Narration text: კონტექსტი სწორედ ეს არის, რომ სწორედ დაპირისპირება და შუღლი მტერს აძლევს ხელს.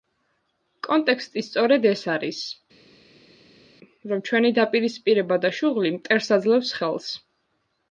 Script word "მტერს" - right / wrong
right